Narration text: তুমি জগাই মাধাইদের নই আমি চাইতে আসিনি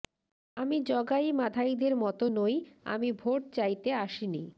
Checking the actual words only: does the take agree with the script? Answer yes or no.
no